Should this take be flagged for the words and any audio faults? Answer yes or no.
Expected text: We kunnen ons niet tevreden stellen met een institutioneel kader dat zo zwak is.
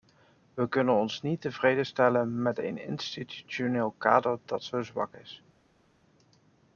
no